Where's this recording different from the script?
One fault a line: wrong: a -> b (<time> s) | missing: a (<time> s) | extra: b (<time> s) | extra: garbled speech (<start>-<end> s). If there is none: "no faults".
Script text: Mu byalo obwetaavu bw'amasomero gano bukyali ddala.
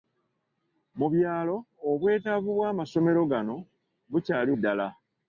no faults